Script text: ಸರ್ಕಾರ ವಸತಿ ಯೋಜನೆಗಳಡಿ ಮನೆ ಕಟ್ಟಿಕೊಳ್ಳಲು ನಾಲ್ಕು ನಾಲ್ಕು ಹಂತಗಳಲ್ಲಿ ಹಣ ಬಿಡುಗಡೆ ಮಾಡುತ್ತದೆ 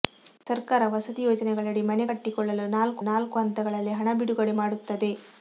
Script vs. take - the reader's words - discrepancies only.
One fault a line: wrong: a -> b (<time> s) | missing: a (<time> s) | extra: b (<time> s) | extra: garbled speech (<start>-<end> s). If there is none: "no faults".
no faults